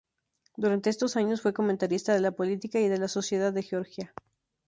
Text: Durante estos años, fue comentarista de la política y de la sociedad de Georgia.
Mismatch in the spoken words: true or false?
false